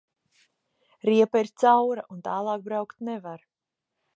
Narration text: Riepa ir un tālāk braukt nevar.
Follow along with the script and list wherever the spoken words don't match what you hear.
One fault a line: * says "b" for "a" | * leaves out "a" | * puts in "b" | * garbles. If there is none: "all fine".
* puts in "caura"